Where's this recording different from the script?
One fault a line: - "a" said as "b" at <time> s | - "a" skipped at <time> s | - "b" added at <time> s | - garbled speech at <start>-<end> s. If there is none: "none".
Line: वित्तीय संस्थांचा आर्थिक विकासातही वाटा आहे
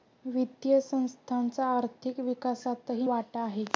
none